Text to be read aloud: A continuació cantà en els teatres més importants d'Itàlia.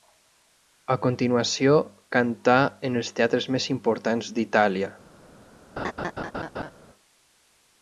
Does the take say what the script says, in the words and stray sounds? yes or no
no